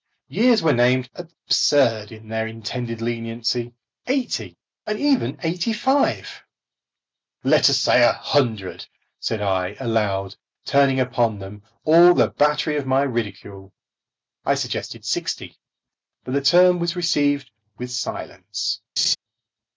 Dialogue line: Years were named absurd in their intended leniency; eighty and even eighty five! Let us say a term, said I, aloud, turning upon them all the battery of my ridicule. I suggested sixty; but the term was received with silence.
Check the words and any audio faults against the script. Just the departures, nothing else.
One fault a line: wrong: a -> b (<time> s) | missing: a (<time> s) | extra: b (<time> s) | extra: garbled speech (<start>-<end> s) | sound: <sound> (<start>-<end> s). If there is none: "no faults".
wrong: term -> hundred (8.1 s)
sound: laugh (19.0-19.2 s)